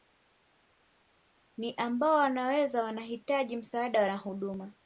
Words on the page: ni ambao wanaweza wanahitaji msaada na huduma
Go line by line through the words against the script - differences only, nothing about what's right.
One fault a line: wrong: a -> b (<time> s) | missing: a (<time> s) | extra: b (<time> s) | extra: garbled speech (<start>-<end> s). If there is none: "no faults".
no faults